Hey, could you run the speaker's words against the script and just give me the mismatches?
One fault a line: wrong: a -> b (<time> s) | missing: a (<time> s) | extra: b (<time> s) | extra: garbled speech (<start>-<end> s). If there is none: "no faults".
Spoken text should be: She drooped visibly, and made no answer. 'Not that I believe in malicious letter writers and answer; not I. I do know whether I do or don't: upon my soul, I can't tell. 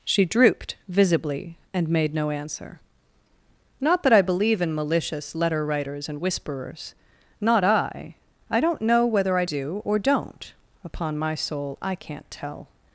wrong: answer -> whisperers (6.2 s)
wrong: do -> don't (8.6 s)